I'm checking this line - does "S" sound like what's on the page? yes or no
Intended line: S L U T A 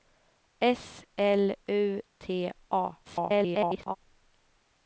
yes